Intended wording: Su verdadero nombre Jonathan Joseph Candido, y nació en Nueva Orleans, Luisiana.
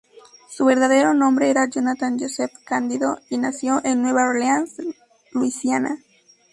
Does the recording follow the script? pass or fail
fail